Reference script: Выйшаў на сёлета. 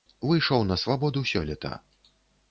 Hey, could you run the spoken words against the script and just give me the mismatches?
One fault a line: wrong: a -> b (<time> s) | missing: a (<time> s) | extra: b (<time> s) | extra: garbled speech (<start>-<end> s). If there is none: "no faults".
extra: свабоду (0.8 s)